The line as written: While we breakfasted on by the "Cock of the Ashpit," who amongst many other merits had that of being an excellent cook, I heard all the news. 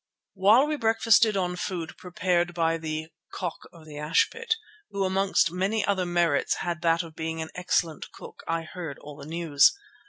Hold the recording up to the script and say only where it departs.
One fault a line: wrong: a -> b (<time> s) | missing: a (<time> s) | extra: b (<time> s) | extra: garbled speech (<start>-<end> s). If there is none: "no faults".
extra: food prepared (1.6 s)